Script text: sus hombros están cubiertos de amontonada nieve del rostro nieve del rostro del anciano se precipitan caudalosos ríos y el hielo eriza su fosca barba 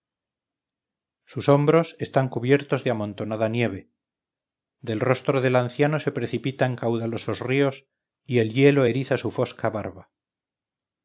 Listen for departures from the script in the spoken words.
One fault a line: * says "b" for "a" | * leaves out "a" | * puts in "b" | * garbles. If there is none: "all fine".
* leaves out "nieve del rostro"